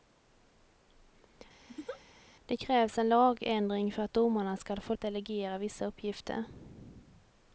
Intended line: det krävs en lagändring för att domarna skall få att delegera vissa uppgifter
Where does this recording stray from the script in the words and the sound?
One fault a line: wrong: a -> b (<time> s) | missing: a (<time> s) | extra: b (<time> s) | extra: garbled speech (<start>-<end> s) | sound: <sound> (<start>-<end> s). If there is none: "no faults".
sound: laugh (1.7-2.0 s)